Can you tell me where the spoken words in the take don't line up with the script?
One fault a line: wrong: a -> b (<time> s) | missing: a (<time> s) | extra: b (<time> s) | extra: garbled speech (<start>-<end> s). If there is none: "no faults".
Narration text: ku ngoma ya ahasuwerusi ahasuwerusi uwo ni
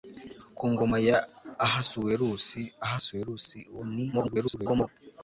extra: garbled speech (4.1-4.9 s)